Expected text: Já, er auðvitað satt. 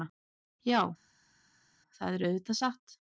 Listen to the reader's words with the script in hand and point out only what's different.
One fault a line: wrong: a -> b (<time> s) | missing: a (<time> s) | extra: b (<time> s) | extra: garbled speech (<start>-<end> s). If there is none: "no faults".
extra: það (2.0 s)